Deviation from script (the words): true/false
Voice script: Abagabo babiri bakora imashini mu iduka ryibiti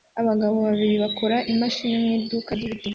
false